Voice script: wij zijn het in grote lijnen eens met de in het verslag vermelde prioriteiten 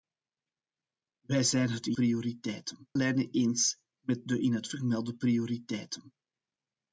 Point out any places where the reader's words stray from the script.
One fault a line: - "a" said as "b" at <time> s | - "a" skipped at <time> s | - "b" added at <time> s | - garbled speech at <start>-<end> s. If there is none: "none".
- "grote" said as "prioriteiten" at 1.9 s
- "verslag" skipped at 4.7 s